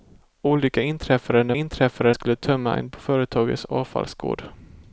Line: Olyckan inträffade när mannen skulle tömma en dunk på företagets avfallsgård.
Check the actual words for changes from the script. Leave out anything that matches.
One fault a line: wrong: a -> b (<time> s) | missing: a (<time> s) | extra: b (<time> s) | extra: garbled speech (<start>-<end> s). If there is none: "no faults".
wrong: mannen -> inträffade (1.5 s)
missing: dunk (2.9 s)